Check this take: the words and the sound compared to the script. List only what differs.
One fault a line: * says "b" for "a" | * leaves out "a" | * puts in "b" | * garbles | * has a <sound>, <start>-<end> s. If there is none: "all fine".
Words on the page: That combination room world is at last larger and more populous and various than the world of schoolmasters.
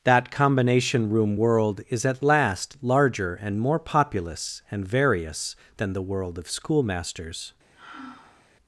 * has a sigh, 7.7-8.5 s